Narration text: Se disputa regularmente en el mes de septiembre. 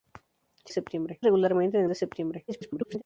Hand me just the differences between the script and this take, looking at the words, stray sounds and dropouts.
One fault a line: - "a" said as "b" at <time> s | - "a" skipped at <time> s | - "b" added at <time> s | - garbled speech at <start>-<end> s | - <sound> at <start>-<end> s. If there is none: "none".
- "disputa" said as "septiembre" at 0.7 s
- "mes" skipped at 1.9 s
- garbled speech at 2.5-3.0 s